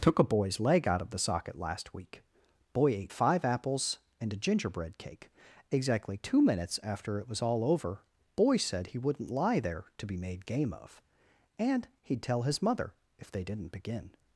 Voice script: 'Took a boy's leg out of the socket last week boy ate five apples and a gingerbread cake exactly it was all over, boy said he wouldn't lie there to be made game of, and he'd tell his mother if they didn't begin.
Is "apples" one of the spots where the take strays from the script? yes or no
no